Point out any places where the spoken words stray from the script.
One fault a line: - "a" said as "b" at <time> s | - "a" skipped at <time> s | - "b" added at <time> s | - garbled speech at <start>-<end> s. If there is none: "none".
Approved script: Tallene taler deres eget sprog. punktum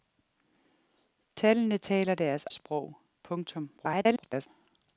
- "eget" skipped at 2.5 s
- garbled speech at 3.8-4.5 s